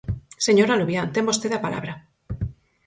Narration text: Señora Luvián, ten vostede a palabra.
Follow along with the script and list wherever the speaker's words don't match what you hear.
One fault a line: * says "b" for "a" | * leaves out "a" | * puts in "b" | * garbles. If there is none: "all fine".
all fine